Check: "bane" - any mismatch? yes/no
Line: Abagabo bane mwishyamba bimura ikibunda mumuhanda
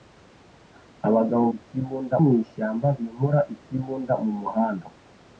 yes